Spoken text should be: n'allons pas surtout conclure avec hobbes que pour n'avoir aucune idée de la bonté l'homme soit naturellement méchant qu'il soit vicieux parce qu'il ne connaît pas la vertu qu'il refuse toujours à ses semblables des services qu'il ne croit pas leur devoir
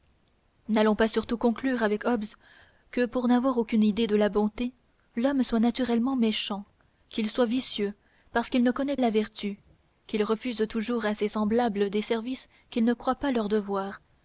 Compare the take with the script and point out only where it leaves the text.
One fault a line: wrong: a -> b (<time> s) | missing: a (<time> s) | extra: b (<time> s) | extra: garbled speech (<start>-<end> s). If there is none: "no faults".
missing: pas (9.0 s)